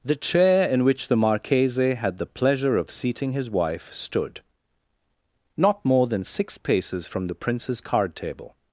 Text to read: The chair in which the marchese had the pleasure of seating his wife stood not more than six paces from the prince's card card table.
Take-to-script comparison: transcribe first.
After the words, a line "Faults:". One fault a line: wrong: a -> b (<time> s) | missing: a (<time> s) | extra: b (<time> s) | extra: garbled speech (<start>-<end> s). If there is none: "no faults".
The chair in which the marchese had the pleasure of seating his wife stood not more than six paces from the prince's card table.
Faults:
missing: card (8.1 s)